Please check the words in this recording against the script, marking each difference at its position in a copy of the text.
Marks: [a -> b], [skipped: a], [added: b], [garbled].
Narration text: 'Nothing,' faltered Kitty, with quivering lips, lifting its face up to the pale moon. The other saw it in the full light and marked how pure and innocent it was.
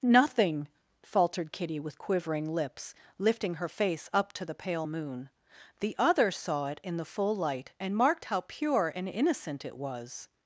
'Nothing,' faltered Kitty, with quivering lips, lifting [its -> her] face up to the pale moon. The other saw it in the full light and marked how pure and innocent it was.